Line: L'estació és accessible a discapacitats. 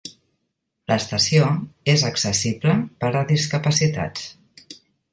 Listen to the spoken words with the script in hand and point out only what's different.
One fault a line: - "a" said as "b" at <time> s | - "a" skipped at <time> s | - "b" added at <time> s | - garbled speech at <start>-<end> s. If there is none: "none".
- "per" added at 3.0 s